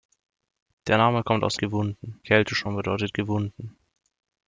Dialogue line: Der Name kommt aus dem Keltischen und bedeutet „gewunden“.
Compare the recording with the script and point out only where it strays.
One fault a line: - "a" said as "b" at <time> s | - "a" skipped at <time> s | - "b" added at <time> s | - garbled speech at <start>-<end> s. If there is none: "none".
- "dem" said as "gewunden" at 1.6 s